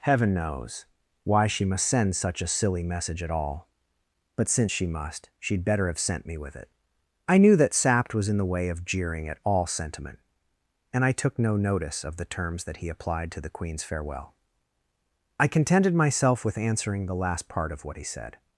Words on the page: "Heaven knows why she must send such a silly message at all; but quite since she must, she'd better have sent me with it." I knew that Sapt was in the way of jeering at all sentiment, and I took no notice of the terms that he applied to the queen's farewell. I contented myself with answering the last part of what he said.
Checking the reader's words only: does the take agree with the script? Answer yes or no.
no